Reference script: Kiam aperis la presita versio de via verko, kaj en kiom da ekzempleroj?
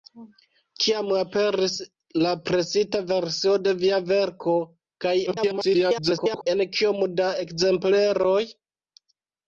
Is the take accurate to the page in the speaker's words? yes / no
no